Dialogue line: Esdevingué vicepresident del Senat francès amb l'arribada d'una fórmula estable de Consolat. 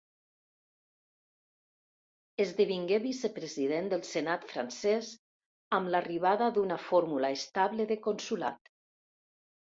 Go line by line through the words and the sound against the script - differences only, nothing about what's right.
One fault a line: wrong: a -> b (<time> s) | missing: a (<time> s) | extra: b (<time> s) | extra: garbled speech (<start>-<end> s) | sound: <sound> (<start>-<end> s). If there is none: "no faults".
no faults